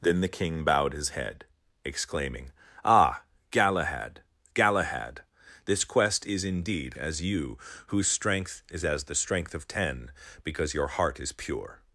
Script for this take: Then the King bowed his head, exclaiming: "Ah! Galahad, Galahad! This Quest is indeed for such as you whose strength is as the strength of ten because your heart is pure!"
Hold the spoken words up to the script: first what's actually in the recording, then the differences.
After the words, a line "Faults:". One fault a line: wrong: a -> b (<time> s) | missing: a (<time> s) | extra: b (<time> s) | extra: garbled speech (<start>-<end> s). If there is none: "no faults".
Then the King bowed his head, exclaiming: "Ah! Galahad, Galahad! This Quest is indeed as you whose strength is as the strength of ten because your heart is pure!"
Faults:
missing: for such (7.0 s)